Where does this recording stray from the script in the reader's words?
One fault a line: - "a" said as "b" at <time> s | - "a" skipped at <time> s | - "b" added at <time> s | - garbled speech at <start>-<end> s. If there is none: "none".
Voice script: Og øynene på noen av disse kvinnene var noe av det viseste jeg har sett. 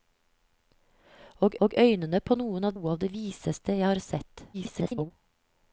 - "og" added at 1.7 s
- "disse kvinnene var" skipped at 2.7 s
- garbled speech at 4.5-5.1 s